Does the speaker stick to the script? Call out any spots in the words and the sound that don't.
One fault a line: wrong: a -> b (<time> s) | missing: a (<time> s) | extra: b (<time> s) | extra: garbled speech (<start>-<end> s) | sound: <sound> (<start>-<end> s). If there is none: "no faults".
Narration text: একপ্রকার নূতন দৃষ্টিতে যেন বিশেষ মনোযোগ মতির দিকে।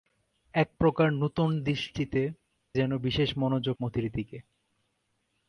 no faults